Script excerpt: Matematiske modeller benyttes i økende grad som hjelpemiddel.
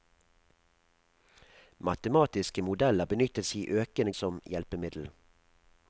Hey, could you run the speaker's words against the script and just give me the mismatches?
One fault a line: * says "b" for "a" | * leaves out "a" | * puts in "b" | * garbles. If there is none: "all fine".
* leaves out "grad"